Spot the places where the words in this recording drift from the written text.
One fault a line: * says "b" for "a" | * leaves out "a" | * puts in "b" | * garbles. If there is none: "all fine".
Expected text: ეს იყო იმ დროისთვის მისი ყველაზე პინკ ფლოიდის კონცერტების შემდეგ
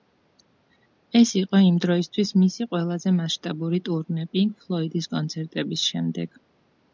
* puts in "მასშტაბური ტურნე"